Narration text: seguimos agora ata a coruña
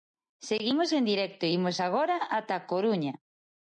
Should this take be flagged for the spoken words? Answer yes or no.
yes